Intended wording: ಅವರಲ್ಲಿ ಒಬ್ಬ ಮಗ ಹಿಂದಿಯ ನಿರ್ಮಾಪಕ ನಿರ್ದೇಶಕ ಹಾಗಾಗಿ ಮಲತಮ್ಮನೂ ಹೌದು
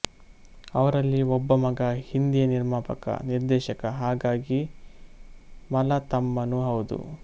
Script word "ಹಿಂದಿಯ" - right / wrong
right